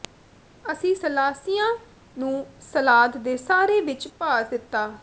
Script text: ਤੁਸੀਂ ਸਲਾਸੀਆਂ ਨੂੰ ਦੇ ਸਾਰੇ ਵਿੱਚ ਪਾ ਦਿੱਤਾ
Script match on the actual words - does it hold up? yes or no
no